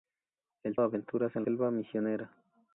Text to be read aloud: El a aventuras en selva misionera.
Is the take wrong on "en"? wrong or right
right